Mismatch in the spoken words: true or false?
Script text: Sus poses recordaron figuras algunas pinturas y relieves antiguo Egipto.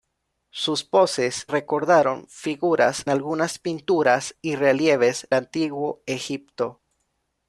false